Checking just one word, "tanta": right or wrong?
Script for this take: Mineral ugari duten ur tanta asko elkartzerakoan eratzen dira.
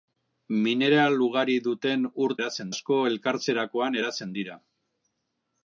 wrong